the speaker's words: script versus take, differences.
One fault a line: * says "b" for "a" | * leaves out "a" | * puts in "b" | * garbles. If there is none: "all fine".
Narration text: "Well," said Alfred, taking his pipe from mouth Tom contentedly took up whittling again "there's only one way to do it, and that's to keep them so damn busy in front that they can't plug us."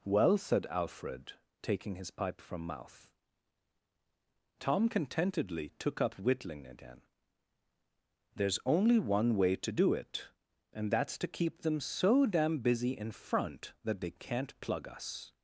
all fine